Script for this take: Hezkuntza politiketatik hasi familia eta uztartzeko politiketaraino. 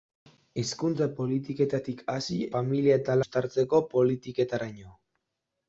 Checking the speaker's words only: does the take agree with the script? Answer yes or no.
yes